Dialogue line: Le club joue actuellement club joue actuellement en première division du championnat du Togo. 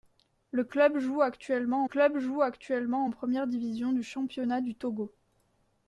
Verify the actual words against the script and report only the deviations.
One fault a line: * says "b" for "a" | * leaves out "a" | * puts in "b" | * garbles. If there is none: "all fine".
all fine